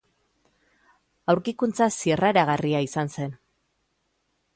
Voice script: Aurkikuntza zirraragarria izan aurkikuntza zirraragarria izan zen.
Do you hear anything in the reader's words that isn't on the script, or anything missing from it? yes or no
yes